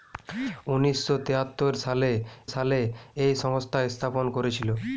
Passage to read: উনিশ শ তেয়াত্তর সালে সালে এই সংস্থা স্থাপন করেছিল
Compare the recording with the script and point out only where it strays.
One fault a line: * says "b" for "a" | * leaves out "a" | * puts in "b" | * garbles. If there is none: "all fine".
all fine